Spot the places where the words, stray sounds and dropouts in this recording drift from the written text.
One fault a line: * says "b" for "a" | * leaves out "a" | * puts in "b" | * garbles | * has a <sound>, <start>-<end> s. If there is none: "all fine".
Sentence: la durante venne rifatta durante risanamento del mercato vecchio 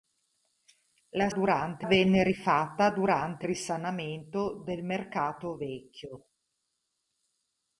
all fine